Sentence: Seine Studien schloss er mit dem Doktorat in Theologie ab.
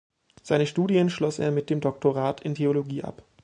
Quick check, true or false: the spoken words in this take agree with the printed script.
true